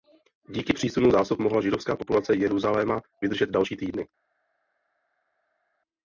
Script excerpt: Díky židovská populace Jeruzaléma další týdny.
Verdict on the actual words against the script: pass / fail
fail